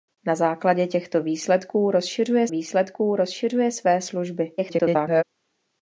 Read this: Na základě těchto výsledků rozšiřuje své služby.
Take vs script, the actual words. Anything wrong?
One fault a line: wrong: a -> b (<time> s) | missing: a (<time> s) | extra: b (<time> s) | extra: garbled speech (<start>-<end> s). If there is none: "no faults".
extra: výsledků rozšiřuje (2.5 s)
extra: garbled speech (4.6-5.2 s)